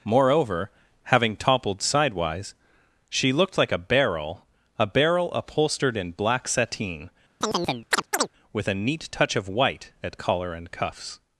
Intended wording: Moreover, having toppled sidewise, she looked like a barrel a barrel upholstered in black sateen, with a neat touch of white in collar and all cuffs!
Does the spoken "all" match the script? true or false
false